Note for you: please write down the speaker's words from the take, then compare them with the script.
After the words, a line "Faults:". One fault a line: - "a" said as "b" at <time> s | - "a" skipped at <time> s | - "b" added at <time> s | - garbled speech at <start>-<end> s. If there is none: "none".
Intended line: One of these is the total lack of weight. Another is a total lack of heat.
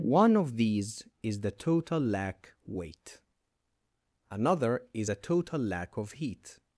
One of these is the total lack weight. Another is a total lack of heat.
Faults:
- "of" skipped at 2.5 s